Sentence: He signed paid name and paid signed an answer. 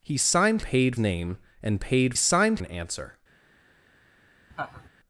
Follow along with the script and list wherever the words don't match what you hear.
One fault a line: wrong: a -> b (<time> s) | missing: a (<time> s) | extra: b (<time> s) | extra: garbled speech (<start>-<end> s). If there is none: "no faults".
no faults